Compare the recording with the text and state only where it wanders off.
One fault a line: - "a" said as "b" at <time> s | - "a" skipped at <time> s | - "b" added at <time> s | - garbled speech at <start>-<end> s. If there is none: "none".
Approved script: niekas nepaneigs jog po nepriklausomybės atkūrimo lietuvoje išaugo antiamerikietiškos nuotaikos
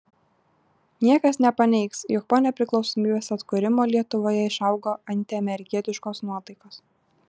none